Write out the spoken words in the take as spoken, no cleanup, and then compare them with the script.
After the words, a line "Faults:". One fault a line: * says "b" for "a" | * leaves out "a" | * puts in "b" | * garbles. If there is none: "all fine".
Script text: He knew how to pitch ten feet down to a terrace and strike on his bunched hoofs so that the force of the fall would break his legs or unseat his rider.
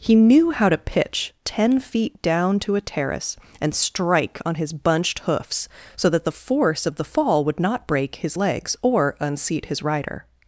He knew how to pitch ten feet down to a terrace and strike on his bunched hoofs so that the force of the fall would not break his legs or unseat his rider.
Faults:
* puts in "not"